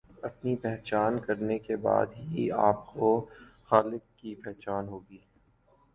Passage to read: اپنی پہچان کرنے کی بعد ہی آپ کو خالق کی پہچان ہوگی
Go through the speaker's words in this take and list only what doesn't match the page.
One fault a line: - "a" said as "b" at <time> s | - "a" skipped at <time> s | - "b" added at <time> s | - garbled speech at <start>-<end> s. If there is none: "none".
- "کی" said as "کے" at 1.6 s